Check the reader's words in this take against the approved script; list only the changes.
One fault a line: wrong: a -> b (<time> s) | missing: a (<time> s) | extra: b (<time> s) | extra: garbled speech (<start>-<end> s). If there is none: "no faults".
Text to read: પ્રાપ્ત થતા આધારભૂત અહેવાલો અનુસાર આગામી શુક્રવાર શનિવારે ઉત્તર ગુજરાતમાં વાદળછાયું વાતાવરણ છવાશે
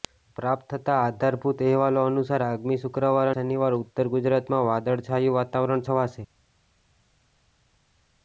no faults